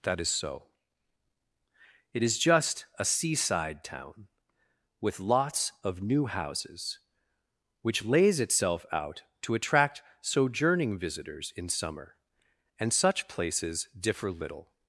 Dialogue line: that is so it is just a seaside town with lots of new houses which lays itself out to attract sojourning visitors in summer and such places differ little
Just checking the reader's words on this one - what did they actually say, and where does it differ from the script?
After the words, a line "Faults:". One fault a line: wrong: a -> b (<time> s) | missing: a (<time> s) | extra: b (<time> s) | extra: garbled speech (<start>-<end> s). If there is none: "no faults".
that is so it is just a seaside town with lots of new houses which lays itself out to attract sojourning visitors in summer and such places differ little
Faults:
no faults